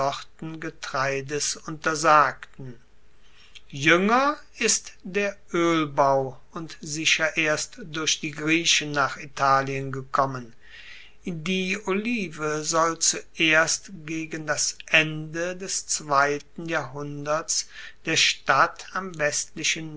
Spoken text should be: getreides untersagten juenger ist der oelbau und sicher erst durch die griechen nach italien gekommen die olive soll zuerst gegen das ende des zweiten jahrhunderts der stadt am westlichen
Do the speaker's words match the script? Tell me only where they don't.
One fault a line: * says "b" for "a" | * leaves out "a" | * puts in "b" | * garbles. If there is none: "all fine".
all fine